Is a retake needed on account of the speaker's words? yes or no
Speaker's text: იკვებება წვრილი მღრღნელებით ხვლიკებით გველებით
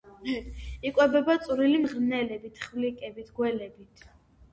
no